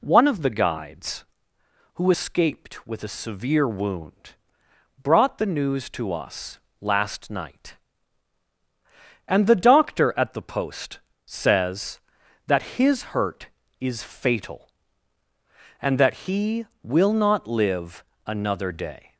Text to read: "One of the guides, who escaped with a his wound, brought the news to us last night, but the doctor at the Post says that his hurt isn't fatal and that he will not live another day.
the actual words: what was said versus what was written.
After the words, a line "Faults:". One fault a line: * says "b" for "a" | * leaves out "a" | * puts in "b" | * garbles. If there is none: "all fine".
"One of the guides, who escaped with a severe wound, brought the news to us last night, and the doctor at the Post says that his hurt is fatal and that he will not live another day.
Faults:
* says "severe" for "his"
* says "and" for "but"
* says "is" for "isn't"